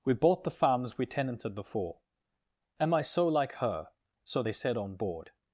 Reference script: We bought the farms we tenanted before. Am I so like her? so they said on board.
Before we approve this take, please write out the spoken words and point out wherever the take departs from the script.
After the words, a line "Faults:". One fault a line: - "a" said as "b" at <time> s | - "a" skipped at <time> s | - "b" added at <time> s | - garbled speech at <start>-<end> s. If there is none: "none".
We bought the farms we tenanted before. Am I so like her? so they said on board.
Faults:
none